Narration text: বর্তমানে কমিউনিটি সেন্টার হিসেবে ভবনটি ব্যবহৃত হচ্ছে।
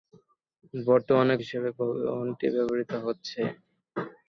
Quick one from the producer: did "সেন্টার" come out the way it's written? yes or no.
no